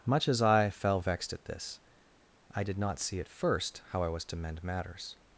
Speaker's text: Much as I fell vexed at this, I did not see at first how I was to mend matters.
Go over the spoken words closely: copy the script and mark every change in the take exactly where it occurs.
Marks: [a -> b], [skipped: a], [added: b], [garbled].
Much as I fell vexed at this, I did not see at first how I was to mend matters.